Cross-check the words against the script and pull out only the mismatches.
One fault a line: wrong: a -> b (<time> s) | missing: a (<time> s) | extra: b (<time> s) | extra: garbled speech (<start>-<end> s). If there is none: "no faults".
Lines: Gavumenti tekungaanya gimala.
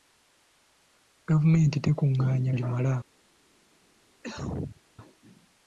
no faults